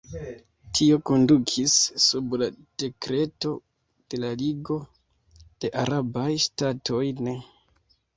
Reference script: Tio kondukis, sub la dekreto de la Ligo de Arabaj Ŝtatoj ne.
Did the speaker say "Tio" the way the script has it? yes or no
yes